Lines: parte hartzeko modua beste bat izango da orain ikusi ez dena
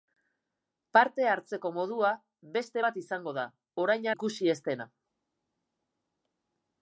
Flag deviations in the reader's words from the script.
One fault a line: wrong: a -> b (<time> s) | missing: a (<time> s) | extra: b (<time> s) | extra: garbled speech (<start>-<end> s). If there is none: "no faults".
no faults